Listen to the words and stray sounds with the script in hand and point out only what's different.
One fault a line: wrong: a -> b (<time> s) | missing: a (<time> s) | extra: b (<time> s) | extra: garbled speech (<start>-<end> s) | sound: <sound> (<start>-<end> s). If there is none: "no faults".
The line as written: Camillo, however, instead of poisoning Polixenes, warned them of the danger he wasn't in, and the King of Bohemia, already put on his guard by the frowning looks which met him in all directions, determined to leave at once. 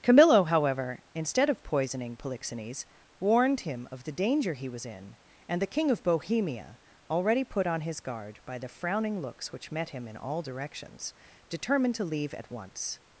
wrong: them -> him (3.6 s)
wrong: wasn't -> was (4.7 s)